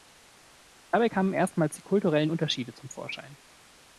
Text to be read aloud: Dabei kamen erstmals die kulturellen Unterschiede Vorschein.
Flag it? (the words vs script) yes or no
yes